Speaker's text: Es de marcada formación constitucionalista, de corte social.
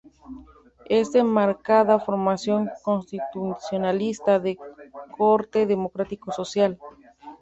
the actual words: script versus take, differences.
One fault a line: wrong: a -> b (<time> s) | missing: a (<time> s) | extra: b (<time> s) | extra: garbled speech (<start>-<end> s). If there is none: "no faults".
extra: democrático (5.7 s)